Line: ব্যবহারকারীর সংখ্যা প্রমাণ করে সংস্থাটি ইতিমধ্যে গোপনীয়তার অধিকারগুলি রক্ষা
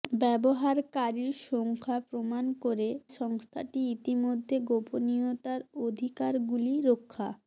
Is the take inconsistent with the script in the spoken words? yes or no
no